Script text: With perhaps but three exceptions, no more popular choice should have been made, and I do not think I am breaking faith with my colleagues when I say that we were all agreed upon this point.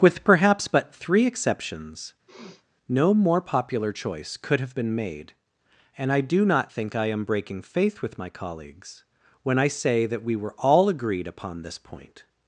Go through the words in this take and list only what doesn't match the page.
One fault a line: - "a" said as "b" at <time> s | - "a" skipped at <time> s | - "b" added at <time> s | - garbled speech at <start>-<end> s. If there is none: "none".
- "should" said as "could" at 4.4 s